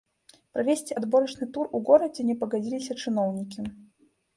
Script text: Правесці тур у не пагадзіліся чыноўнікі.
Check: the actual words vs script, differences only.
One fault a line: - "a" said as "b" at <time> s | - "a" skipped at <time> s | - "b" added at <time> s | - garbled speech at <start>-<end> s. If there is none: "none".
- "адборачны" added at 1.0 s
- "горадзе" added at 1.9 s